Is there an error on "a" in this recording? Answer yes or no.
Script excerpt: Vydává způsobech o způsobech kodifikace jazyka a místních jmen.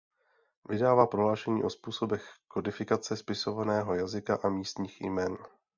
no